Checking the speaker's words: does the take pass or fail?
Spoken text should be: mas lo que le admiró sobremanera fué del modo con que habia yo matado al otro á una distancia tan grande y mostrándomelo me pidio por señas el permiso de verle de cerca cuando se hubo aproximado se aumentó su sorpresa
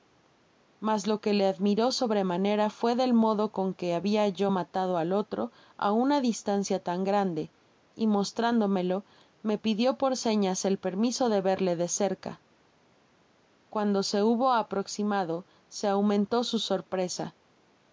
pass